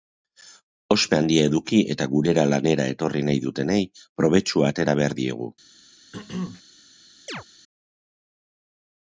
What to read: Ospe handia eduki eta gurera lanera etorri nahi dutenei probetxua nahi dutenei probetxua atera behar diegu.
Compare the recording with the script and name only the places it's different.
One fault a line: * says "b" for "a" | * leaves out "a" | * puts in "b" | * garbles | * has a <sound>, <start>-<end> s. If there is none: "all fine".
* leaves out "nahi dutenei probetxua"
* has a throat clearing, 6.1-6.6 s
* has a chirp, 7.3-7.4 s